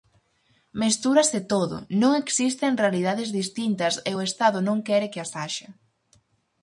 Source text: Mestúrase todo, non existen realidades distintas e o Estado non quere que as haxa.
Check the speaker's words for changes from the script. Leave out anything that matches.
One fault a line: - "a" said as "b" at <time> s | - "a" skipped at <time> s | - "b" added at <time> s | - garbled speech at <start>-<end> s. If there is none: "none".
none